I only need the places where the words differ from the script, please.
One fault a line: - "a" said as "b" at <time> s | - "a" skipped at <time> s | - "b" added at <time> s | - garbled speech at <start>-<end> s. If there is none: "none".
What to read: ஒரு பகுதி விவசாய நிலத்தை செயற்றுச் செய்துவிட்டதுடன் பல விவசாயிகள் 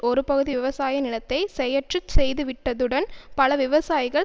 none